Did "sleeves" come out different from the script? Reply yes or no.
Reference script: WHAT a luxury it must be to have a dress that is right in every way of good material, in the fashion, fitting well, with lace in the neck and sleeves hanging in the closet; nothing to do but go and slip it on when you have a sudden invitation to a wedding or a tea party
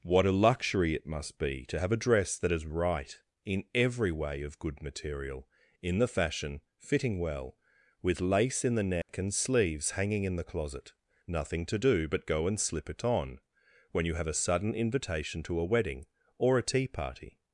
no